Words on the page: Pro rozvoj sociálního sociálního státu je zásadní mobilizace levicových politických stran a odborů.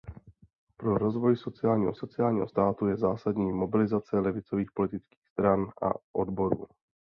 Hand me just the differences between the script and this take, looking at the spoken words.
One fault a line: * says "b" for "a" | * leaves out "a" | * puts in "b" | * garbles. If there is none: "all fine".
all fine